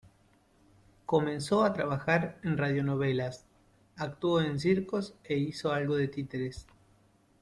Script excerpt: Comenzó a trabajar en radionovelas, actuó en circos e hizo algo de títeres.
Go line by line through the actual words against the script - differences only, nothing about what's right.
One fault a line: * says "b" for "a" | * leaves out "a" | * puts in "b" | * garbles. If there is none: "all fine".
all fine